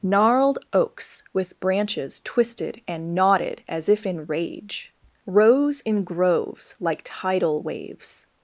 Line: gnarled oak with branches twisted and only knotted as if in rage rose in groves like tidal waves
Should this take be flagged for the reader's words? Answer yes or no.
yes